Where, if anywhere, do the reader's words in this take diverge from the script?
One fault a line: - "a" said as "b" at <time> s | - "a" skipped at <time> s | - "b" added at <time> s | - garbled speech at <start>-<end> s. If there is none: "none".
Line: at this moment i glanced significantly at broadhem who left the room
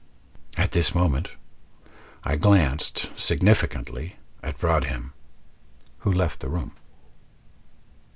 none